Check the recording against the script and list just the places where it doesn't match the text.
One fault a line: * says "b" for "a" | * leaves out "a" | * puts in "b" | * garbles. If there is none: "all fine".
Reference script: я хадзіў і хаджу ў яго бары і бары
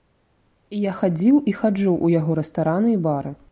* says "рэстараны" for "бары"